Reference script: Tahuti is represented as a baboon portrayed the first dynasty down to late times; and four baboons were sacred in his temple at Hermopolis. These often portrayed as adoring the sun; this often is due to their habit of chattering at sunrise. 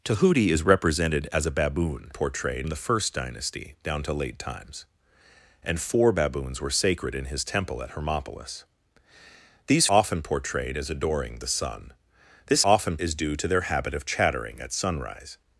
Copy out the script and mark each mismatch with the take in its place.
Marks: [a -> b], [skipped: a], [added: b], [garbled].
Tahuti is represented as a baboon portrayed the first dynasty down to late times; and four baboons were sacred in his temple at Hermopolis. These often portrayed as adoring the sun; this often is due to their habit of chattering at sunrise.